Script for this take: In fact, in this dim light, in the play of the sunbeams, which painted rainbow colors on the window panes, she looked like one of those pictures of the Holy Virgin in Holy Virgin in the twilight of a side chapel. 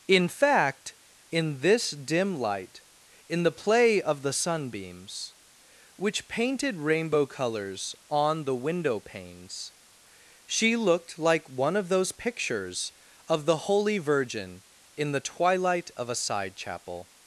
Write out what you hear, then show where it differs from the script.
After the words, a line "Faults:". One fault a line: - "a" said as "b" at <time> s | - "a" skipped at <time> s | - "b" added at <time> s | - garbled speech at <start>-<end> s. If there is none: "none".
In fact, in this dim light, in the play of the sunbeams, which painted rainbow colors on the window panes, she looked like one of those pictures of the Holy Virgin in the twilight of a side chapel.
Faults:
- "Holy Virgin in" skipped at 15.1 s